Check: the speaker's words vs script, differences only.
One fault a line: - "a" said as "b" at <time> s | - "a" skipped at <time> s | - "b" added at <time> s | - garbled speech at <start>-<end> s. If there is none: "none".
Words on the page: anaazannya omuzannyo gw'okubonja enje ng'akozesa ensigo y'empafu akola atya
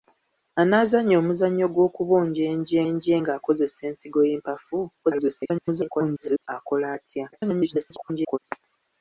- "enje" added at 2.9 s
- garbled speech at 5.0-6.5 s
- garbled speech at 7.3-8.4 s